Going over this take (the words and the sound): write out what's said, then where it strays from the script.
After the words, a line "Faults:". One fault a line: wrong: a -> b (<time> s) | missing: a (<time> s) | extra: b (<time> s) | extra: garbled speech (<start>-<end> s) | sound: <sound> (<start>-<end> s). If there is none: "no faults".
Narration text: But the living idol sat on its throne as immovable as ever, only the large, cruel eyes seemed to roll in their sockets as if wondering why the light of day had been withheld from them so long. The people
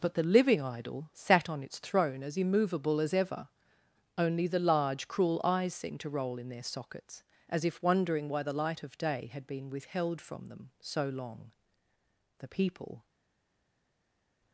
But the living idol sat on its throne as immovable as ever, only the large, cruel eyes seemed to roll in their sockets as if wondering why the light of day had been withheld from them so long. The people
Faults:
no faults